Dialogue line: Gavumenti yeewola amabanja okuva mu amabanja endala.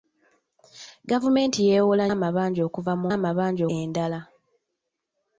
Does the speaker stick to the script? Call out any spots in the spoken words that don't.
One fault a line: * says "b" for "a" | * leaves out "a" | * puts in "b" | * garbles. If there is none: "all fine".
all fine